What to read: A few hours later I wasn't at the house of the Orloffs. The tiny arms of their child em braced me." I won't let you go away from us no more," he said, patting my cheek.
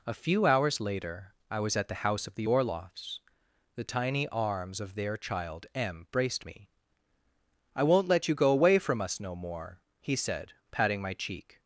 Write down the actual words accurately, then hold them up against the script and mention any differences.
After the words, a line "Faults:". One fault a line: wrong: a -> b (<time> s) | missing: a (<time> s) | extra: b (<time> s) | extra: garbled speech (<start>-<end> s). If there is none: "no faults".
A few hours later I was at the house of the Orloffs. The tiny arms of their child em braced me." I won't let you go away from us no more," he said, patting my cheek.
Faults:
wrong: wasn't -> was (1.6 s)